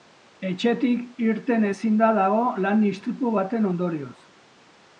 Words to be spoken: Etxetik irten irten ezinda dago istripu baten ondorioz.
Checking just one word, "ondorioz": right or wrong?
right